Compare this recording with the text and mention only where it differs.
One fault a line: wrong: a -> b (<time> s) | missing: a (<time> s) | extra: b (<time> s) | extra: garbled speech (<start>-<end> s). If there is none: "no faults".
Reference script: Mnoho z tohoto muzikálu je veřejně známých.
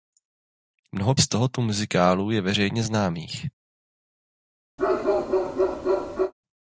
no faults